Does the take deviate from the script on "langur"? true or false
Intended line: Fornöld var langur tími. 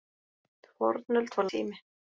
true